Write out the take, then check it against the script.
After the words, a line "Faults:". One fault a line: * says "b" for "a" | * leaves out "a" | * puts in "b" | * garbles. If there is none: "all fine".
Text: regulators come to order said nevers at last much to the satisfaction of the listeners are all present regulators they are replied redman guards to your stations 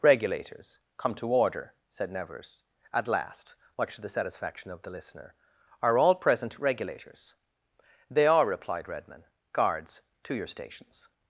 regulators come to order said nevers at last much to the satisfaction of the listener are all present regulators they are replied redman guards to your stations
Faults:
* says "listener" for "listeners"